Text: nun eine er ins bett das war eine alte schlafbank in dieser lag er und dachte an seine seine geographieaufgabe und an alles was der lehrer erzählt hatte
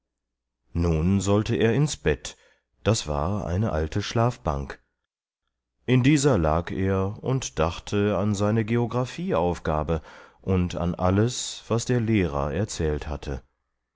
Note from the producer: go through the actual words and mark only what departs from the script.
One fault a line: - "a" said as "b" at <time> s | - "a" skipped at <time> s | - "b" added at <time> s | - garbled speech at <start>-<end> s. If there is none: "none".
- "eine" said as "sollte" at 1.2 s
- "seine" skipped at 8.6 s